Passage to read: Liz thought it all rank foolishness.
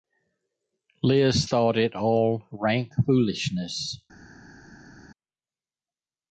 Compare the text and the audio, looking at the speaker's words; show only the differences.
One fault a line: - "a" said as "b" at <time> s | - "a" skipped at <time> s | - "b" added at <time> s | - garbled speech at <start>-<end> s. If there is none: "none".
none